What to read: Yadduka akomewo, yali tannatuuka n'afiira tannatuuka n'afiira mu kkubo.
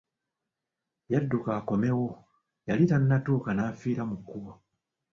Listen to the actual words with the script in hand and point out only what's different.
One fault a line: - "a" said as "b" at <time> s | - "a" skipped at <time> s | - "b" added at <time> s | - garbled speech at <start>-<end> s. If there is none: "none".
- "tannatuuka n'afiira" skipped at 4.0 s